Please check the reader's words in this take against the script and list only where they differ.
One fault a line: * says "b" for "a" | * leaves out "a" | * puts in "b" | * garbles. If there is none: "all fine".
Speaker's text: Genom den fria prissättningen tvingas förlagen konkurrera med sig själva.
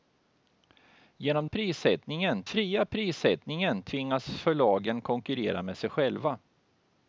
* says "prissättningen" for "den"